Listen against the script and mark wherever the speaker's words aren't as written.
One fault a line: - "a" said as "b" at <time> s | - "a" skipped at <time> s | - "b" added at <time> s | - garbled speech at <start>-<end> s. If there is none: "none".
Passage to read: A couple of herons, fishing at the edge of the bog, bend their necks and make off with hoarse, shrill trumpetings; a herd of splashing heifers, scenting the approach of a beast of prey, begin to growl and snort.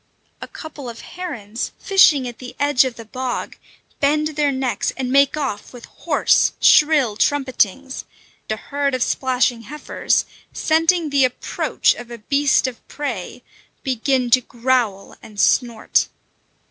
none